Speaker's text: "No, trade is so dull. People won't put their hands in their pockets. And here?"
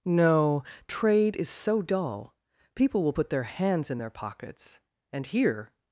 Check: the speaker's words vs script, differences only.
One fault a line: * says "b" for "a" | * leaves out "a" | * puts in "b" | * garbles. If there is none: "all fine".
* says "will" for "won't"